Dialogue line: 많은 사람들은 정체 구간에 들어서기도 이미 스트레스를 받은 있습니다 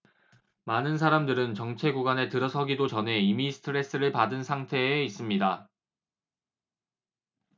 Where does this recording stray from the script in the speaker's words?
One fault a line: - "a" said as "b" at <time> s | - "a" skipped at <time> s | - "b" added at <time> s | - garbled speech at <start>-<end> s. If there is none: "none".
- "전에" added at 2.9 s
- "상태에" added at 4.4 s